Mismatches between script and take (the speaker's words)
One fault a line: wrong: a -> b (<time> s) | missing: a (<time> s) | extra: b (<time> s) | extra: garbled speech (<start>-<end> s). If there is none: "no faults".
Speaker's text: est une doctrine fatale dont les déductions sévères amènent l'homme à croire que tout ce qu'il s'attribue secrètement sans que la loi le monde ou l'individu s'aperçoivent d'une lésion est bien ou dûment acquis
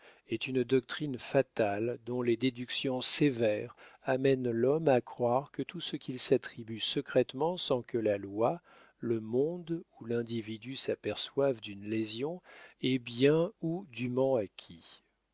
no faults